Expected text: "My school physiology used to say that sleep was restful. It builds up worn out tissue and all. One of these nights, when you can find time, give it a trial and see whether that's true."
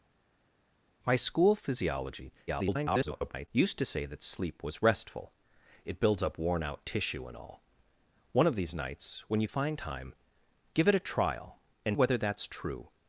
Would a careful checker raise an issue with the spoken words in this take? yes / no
yes